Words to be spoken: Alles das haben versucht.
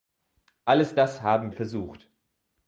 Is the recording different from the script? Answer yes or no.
no